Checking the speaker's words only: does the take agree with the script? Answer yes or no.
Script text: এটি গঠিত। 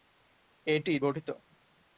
yes